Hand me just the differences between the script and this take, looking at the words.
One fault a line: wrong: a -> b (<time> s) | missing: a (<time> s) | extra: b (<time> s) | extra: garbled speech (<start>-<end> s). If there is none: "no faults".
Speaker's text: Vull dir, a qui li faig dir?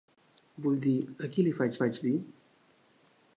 extra: faig (1.8 s)